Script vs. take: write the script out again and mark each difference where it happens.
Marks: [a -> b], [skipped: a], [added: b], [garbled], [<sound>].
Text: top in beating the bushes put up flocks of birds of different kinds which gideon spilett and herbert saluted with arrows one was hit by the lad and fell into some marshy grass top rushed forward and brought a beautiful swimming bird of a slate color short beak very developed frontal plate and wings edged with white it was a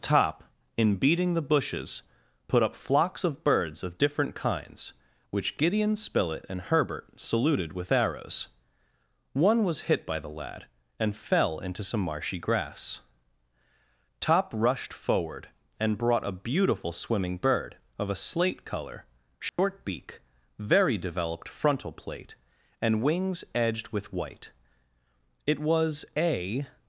top in beating the bushes put up flocks of birds of different kinds which gideon spilett and herbert saluted with arrows one was hit by the lad and fell into some marshy grass top rushed forward and brought a beautiful swimming bird of a slate color short [dropout] beak very developed frontal plate and wings edged with white it was a